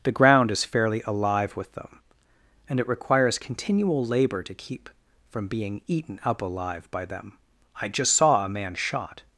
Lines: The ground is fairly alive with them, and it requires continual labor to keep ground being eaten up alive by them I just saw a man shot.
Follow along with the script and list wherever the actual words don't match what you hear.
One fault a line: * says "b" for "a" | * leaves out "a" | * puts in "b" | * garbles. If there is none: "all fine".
* says "from" for "ground"